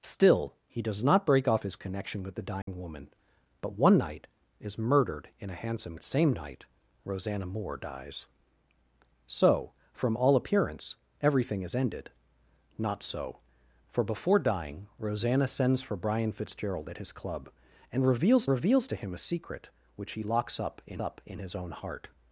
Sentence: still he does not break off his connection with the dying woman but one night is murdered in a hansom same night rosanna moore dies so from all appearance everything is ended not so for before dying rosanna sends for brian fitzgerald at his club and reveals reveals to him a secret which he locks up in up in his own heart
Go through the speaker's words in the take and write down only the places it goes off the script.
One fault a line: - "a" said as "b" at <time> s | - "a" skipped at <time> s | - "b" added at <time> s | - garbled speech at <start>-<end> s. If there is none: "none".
none